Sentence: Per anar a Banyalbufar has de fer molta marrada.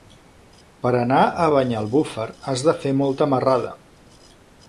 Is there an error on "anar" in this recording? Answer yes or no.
no